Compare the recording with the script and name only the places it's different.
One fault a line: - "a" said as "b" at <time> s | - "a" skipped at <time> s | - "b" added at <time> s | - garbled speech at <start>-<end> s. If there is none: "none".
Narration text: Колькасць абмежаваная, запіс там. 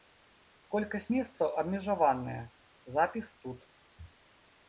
- "месцаў" added at 1.1 s
- "там" said as "тут" at 3.5 s